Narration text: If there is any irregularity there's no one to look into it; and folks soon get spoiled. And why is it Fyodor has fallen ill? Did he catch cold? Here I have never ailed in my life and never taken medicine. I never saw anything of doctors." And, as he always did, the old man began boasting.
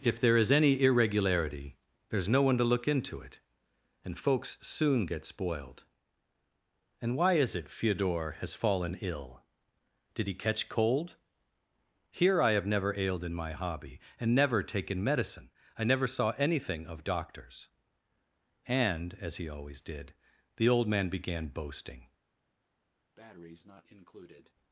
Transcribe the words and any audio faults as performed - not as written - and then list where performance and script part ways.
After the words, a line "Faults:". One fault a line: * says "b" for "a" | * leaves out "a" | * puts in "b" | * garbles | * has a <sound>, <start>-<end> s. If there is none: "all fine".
If there is any irregularity there's no one to look into it; and folks soon get spoiled. And why is it Fyodor has fallen ill? Did he catch cold? Here I have never ailed in my hobby and never taken medicine. I never saw anything of doctors." And, as he always did, the old man began boasting.
Faults:
* says "hobby" for "life"
* has a breath, 23.2-24.5 s